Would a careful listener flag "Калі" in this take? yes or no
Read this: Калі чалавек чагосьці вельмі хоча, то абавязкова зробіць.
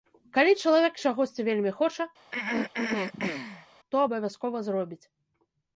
no